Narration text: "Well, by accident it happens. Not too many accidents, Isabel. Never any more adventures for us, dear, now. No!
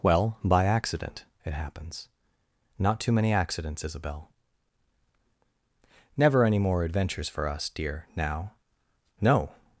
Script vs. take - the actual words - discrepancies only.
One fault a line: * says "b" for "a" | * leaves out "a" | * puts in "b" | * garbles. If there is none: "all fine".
all fine